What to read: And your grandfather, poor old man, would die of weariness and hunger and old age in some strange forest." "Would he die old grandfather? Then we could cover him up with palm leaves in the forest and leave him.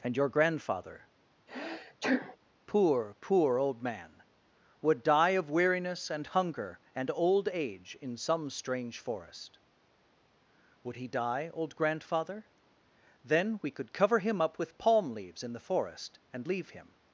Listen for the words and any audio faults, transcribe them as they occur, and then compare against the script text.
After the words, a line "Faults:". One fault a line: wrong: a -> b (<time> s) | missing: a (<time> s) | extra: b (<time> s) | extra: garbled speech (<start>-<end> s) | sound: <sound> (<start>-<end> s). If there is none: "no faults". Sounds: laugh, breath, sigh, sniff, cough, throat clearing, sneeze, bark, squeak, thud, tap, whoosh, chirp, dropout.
And your grandfather, poor poor old man, would die of weariness and hunger and old age in some strange forest." "Would he die old grandfather? Then we could cover him up with palm leaves in the forest and leave him.
Faults:
sound: sneeze (1.5-2.4 s)
extra: poor (3.2 s)